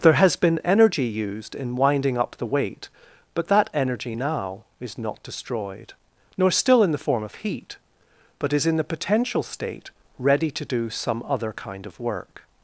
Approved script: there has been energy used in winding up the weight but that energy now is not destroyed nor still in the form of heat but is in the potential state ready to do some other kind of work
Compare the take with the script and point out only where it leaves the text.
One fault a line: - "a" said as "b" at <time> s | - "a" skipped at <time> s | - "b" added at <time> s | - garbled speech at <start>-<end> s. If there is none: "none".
none